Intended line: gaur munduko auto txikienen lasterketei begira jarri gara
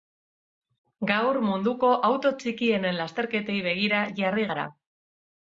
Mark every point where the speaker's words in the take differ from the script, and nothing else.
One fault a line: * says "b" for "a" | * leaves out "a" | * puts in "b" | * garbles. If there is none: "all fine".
all fine